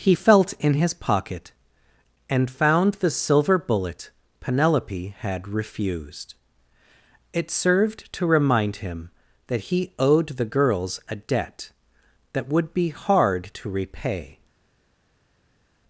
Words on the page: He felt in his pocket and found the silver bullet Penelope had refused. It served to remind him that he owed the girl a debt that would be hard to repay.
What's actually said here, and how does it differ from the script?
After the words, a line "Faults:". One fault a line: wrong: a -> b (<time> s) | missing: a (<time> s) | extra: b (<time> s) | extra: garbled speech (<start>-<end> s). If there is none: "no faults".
He felt in his pocket and found the silver bullet Penelope had refused. It served to remind him that he owed the girls a debt that would be hard to repay.
Faults:
wrong: girl -> girls (10.4 s)